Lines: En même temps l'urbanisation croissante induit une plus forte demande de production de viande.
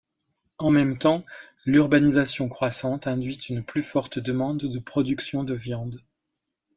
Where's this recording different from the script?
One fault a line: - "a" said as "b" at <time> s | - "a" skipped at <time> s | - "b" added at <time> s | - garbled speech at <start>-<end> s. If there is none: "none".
none